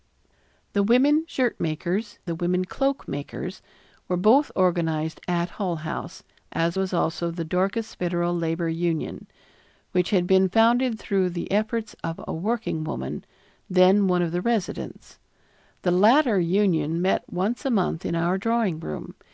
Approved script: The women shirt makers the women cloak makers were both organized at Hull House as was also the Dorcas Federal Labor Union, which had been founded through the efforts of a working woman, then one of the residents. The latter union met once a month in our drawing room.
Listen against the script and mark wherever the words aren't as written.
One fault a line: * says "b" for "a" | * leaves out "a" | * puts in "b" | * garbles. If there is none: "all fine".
all fine